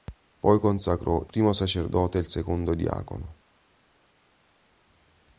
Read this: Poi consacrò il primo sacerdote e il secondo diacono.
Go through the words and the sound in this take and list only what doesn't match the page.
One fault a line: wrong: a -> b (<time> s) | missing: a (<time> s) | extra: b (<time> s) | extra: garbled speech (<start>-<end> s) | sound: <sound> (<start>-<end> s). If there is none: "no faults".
missing: il (1.2 s)